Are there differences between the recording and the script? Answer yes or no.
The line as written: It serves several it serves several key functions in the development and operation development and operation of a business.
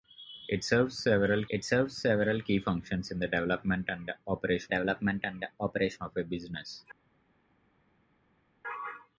no